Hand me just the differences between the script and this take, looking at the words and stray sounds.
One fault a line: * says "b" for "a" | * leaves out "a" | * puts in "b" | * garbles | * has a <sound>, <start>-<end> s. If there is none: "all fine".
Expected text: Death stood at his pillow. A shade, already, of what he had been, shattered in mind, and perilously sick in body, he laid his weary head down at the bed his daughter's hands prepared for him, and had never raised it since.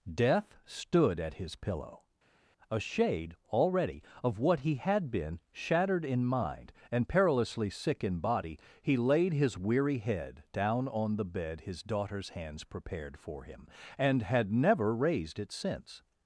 * says "on" for "at"